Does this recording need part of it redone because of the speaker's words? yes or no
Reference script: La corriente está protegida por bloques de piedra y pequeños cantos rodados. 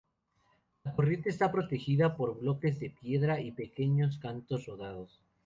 no